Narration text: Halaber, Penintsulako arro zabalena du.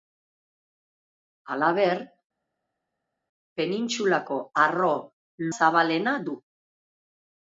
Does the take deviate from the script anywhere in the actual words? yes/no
no